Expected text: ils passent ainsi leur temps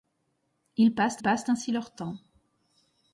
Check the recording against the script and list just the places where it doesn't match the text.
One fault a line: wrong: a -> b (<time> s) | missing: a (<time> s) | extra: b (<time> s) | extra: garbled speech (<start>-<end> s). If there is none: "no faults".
extra: passent (1.2 s)